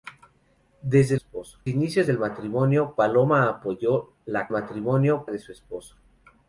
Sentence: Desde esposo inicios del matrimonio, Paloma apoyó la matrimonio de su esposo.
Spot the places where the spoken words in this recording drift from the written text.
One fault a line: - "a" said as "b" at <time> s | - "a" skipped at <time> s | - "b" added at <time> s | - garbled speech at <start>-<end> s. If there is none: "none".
none